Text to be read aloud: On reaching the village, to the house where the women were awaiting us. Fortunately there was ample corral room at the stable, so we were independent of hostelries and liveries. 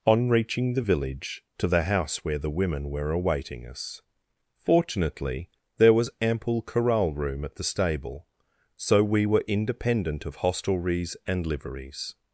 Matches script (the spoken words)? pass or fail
pass